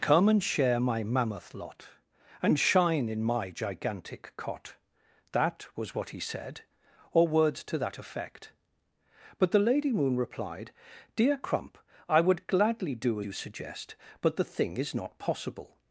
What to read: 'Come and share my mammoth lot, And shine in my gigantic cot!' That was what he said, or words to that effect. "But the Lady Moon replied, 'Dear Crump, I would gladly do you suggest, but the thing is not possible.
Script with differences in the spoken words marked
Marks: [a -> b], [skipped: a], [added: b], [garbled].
'Come and share my mammoth lot, And shine in my gigantic cot!' That was what he said, or words to that effect. "But the Lady Moon replied, 'Dear Crump, I would gladly do you suggest, but the thing is not possible.